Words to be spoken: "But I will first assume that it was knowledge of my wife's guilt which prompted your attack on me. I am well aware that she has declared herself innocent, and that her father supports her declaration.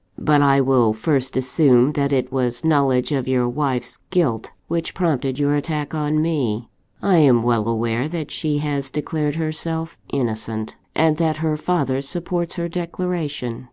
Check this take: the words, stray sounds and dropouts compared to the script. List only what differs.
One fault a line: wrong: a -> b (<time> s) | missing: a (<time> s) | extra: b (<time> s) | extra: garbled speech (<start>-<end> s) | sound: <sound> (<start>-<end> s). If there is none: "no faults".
wrong: my -> your (3.3 s)